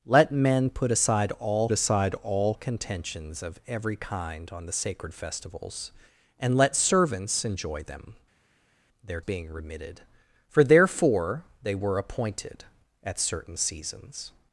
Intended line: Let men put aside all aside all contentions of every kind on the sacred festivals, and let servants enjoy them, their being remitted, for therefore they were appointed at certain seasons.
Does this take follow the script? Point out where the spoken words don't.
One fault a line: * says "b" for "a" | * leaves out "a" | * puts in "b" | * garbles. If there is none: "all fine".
all fine